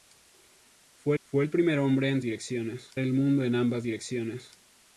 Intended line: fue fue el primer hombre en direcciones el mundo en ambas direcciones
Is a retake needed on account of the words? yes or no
no